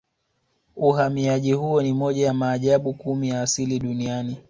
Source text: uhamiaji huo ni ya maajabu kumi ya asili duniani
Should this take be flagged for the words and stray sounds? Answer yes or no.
yes